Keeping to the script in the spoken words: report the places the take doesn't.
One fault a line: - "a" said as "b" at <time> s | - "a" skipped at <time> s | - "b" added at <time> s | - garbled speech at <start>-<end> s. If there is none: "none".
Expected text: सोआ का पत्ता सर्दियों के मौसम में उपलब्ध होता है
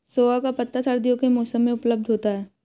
none